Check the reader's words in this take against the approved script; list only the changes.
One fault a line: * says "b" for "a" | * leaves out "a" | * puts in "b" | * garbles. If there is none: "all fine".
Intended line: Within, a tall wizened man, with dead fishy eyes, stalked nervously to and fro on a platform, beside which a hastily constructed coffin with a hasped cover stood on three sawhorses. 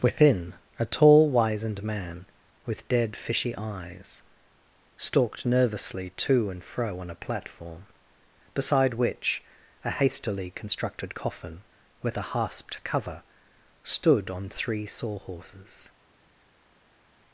all fine